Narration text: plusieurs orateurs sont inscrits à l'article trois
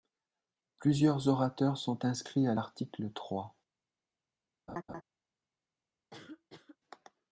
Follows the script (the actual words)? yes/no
yes